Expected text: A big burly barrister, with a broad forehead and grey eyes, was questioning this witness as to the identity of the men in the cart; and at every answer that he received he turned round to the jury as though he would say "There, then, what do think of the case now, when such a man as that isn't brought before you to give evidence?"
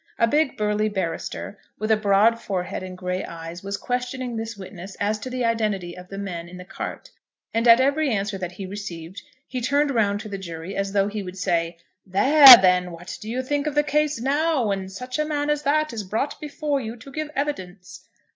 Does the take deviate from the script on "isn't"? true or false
true